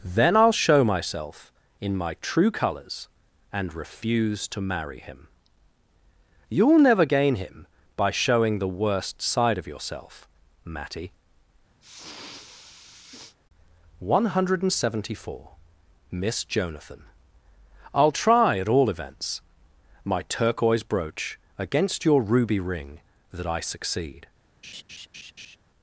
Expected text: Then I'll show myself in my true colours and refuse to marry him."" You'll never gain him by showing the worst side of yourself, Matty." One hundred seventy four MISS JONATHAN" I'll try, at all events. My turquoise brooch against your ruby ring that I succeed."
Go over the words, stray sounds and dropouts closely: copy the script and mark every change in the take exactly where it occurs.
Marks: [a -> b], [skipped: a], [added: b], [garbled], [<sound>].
Then I'll show myself in my true colours and refuse to marry him."" You'll never gain him by showing the worst side of yourself, Matty." [sniff] One hundred seventy four MISS JONATHAN" I'll try, at all events. My turquoise brooch against your ruby ring that I succeed." [laugh]